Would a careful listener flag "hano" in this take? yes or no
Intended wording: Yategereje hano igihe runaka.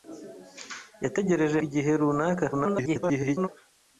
yes